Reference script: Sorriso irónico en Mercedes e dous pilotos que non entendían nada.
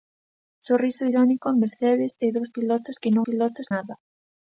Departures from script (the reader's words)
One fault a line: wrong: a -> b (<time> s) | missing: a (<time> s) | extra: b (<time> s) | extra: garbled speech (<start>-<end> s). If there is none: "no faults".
wrong: entendían -> pilotos (3.3 s)